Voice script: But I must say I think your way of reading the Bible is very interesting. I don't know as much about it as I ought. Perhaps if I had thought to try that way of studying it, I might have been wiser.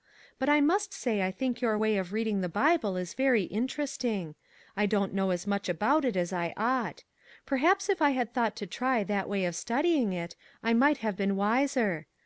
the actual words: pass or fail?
pass